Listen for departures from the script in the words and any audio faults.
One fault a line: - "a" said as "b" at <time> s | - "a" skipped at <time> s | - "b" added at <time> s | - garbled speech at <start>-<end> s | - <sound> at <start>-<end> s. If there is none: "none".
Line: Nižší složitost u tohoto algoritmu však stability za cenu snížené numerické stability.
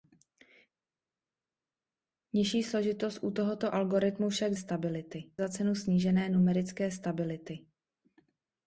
none